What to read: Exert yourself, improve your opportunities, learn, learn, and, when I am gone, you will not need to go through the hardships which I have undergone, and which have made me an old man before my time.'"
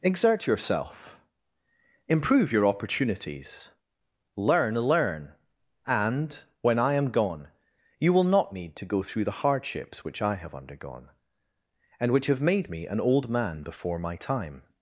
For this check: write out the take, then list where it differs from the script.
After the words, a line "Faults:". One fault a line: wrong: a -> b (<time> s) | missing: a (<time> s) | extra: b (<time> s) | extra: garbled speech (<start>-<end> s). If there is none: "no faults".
Exert yourself, improve your opportunities, learn, learn, and, when I am gone, you will not need to go through the hardships which I have undergone, and which have made me an old man before my time.'"
Faults:
no faults